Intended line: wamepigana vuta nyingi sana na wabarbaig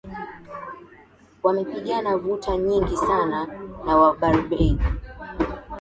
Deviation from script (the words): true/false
false